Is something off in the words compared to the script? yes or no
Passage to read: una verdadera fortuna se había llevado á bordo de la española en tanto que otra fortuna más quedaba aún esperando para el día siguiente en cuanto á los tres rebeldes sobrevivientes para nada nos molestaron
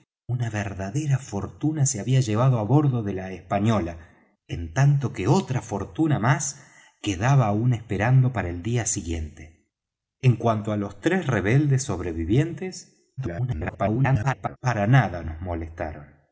yes